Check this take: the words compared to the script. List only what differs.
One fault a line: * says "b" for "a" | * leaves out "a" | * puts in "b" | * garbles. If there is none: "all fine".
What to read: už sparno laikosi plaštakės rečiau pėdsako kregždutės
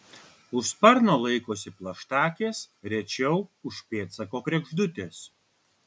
* puts in "už"